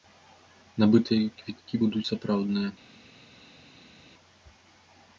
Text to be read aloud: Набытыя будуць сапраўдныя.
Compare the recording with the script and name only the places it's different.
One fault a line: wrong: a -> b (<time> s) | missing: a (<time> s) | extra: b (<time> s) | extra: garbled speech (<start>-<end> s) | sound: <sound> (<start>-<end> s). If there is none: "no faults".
extra: квіткі (1.4 s)